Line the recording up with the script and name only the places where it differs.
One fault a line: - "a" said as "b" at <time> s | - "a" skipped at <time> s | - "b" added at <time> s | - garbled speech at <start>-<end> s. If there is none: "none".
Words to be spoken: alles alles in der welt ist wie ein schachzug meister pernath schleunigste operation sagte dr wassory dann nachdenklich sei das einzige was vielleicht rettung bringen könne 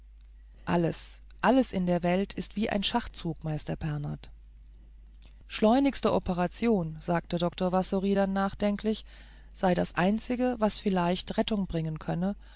none